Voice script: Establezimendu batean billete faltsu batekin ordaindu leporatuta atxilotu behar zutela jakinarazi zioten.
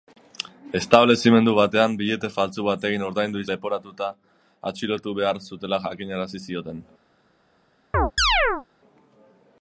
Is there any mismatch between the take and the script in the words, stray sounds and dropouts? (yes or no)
yes